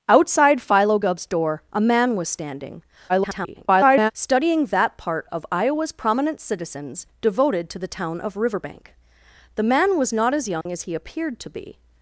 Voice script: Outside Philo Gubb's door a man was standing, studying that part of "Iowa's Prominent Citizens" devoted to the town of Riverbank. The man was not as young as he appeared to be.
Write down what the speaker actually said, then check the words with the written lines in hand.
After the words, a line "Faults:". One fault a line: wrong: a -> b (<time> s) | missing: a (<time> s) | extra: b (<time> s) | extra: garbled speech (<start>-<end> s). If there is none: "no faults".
Outside Philo Gubb's door a man was standing, [garbled] studying that part of "Iowa's Prominent Citizens" devoted to the town of Riverbank. The man was not as young as he appeared to be.
Faults:
extra: garbled speech (3.1-4.1 s)